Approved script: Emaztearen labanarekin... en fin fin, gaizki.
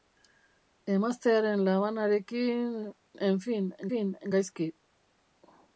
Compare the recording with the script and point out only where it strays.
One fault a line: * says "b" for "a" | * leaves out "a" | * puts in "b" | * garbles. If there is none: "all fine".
all fine